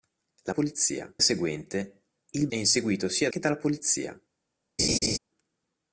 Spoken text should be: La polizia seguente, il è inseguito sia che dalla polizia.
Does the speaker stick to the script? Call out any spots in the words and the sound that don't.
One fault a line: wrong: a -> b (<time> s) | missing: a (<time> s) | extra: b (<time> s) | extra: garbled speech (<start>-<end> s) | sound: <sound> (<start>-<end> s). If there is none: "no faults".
sound: laugh (4.8-5.2 s)